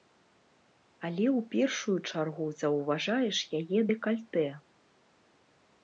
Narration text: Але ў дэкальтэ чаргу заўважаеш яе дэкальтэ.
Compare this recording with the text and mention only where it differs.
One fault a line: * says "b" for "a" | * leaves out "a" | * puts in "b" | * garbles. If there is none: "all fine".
* says "першую" for "дэкальтэ"